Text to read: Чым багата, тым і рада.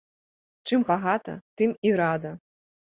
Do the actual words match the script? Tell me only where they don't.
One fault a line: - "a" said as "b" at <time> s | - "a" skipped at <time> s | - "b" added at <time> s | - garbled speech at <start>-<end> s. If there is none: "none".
none